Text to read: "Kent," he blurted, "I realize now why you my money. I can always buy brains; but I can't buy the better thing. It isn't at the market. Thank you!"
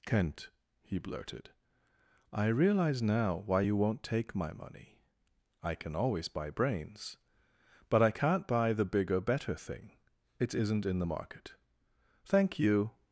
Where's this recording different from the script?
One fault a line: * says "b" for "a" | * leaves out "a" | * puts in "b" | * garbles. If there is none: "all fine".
* puts in "won't take"
* puts in "bigger"
* says "in" for "at"